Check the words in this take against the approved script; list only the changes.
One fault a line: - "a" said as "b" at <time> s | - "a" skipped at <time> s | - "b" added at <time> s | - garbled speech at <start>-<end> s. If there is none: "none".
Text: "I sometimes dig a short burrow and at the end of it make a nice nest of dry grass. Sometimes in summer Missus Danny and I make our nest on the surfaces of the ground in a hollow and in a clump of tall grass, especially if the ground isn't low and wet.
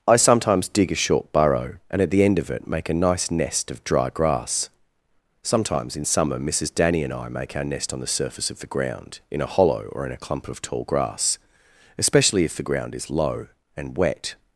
- "surfaces" said as "surface" at 8.1 s
- "and" said as "or" at 9.9 s
- "isn't" said as "is" at 12.9 s